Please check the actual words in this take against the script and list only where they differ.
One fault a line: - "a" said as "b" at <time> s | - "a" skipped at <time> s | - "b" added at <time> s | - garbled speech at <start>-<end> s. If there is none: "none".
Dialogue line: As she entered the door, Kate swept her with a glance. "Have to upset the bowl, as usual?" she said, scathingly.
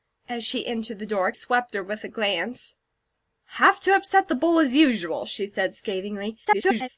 - "Kate" skipped at 1.3 s
- garbled speech at 6.4-6.9 s